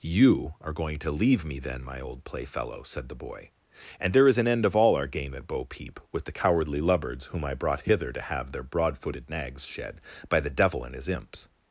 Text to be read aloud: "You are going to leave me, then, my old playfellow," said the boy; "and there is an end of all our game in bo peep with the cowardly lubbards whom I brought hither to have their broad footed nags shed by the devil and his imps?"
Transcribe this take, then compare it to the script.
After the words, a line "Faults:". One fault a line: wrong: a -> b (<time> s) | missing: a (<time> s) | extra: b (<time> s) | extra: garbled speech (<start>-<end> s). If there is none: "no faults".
"You are going to leave me, then, my old playfellow," said the boy; "and there is an end of all our game at bo peep with the cowardly lubbards whom I brought hither to have their broad footed nags shed by the devil and his imps?"
Faults:
wrong: in -> at (5.3 s)